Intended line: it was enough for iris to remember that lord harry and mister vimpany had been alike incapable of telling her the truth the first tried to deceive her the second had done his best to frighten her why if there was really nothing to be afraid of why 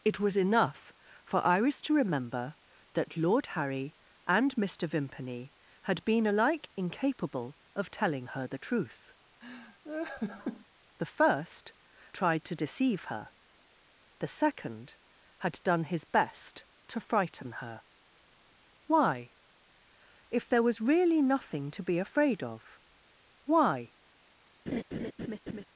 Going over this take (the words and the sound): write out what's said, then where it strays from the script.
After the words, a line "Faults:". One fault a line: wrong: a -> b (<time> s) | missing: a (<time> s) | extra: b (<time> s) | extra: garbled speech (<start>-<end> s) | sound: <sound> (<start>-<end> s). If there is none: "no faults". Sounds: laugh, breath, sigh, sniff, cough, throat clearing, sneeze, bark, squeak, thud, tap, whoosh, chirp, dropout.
it was enough for iris to remember that lord harry and mister vimpany had been alike incapable of telling her the truth the first tried to deceive her the second had done his best to frighten her why if there was really nothing to be afraid of why
Faults:
sound: laugh (9.4-10.7 s)
sound: laugh (24.7-25.6 s)